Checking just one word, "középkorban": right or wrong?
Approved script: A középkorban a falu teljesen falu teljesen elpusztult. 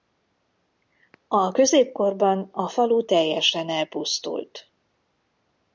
right